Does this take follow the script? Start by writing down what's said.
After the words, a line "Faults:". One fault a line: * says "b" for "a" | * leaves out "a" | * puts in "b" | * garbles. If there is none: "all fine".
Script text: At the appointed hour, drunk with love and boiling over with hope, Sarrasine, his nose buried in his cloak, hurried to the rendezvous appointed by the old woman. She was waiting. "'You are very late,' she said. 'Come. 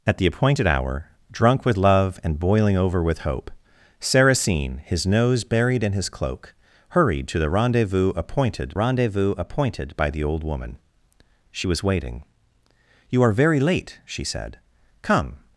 At the appointed hour, drunk with love and boiling over with hope, Sarrasine, his nose buried in his cloak, hurried to the rendezvous appointed rendezvous appointed by the old woman. She was waiting. "'You are very late,' she said. 'Come.
Faults:
* puts in "rendezvous appointed"